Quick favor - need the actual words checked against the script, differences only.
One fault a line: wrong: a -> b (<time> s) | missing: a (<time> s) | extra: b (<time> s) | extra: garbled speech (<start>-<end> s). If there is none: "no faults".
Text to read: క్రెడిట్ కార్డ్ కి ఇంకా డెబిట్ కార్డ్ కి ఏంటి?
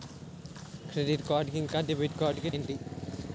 no faults